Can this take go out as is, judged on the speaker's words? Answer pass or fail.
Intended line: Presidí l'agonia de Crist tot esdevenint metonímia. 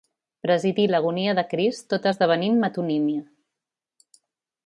pass